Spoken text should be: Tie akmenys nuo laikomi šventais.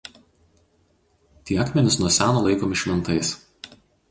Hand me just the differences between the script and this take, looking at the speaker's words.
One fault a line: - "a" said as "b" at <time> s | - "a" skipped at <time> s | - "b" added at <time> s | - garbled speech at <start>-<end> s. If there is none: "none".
- "seno" added at 2.2 s